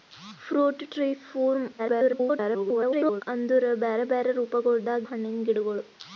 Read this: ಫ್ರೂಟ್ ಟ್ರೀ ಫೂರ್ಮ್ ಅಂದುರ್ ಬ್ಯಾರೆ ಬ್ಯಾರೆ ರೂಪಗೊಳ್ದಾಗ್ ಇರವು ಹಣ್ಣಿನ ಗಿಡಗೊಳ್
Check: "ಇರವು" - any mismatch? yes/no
yes